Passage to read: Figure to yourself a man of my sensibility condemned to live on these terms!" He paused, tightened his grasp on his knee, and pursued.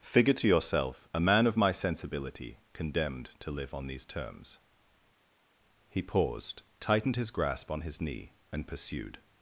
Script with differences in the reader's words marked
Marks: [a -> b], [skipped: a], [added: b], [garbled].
Figure to yourself a man of my sensibility condemned to live on these terms!" He paused, tightened his grasp on his knee, and pursued.